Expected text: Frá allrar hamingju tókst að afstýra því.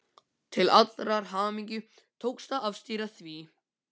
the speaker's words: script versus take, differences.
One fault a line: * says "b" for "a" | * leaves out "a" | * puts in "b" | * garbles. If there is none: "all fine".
* says "Til" for "Frá"